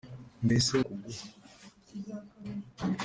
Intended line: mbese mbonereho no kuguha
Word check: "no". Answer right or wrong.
wrong